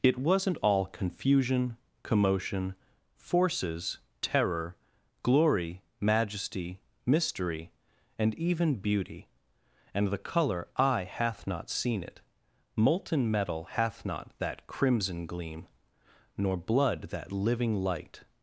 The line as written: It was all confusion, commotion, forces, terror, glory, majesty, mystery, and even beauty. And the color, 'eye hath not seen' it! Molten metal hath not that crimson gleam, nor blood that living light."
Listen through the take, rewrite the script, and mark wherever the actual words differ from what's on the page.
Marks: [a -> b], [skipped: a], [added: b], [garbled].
It [was -> wasn't] all confusion, commotion, forces, terror, glory, majesty, mystery, and even beauty. And the color, 'eye hath not seen' it! Molten metal hath not that crimson gleam, nor blood that living light."